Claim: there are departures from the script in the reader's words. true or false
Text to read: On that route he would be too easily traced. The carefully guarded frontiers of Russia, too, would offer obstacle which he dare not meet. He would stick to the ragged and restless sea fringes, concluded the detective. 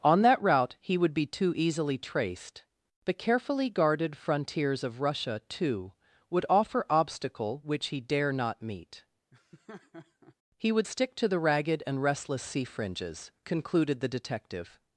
false